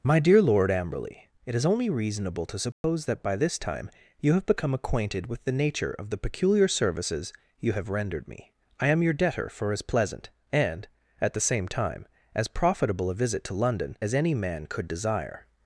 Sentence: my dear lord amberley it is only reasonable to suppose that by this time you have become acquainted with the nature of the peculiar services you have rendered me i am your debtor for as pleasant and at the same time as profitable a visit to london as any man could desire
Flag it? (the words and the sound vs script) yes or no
yes